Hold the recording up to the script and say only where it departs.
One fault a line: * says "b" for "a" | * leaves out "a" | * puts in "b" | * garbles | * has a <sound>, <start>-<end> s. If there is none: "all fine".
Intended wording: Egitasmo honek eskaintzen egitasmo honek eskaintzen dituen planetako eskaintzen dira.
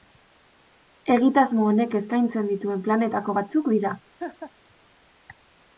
* leaves out "egitasmo honek eskaintzen"
* says "batzuk" for "eskaintzen"
* has a laugh, 4.2-4.5 s